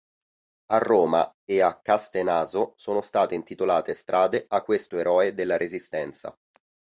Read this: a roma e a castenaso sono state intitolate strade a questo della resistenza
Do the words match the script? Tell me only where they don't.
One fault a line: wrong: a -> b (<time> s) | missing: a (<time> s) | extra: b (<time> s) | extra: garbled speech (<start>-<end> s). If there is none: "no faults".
extra: eroe (5.0 s)